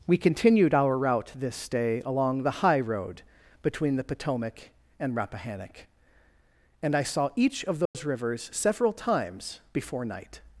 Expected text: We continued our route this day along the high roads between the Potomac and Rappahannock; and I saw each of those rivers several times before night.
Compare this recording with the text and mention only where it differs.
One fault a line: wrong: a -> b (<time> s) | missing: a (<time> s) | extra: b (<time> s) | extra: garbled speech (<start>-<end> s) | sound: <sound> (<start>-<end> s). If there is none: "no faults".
wrong: roads -> road (2.8 s)
sound: dropout (7.9-7.9 s)